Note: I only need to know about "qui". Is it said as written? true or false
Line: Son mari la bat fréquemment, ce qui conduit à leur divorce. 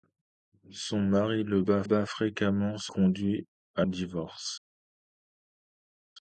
false